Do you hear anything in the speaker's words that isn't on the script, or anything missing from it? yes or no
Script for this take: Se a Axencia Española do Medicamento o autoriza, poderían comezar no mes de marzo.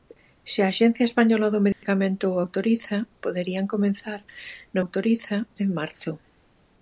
yes